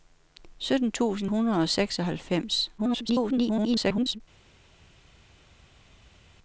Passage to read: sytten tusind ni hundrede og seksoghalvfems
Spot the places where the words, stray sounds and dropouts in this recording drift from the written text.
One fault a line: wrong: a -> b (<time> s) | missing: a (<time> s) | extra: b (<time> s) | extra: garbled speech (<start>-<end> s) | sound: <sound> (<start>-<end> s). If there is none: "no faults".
missing: ni (1.3 s)
extra: garbled speech (2.8-4.2 s)